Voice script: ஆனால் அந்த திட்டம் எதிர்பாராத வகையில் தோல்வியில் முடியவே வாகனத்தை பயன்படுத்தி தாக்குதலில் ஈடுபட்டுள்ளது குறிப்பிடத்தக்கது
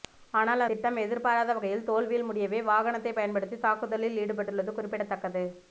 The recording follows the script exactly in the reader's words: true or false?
false